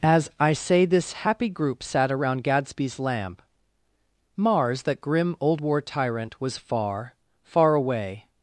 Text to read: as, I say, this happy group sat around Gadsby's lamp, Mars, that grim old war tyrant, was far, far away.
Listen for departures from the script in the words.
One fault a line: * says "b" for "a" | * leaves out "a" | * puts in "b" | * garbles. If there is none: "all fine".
all fine